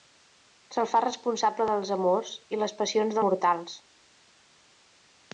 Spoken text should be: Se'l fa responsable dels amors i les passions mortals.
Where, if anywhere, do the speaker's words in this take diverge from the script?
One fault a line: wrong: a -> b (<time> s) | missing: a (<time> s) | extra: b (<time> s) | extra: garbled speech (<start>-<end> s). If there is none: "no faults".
no faults